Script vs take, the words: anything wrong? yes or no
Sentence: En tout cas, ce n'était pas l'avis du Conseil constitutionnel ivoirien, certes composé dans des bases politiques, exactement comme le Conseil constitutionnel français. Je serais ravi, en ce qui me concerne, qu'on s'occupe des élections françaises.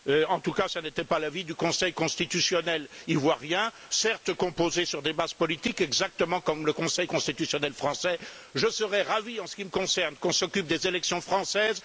yes